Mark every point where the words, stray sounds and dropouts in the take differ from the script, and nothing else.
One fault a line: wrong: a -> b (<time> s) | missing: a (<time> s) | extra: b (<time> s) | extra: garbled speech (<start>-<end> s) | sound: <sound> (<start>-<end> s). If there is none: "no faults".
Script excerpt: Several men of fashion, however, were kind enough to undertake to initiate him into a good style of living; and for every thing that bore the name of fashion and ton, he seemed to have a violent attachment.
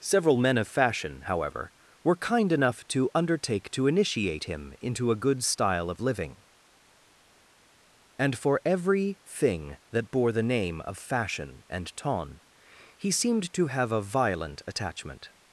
no faults